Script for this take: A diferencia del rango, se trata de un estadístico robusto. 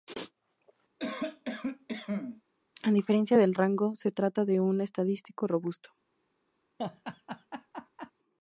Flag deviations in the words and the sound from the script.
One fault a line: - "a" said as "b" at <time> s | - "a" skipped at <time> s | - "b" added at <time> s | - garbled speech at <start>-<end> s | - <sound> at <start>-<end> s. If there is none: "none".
- cough at 1.0-2.4 s
- laugh at 6.8-8.1 s